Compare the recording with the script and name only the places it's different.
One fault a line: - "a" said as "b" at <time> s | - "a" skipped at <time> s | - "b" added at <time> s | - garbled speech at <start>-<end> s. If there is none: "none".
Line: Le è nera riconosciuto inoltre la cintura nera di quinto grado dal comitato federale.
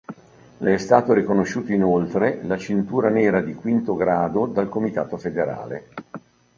- "nera" said as "stato" at 0.8 s